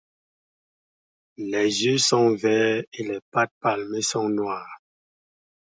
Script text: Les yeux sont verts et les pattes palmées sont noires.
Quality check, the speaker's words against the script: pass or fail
pass